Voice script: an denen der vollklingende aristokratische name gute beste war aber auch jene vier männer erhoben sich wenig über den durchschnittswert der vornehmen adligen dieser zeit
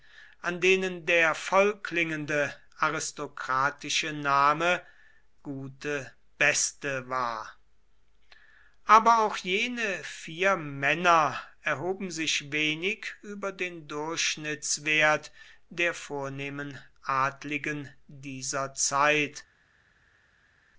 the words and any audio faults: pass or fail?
pass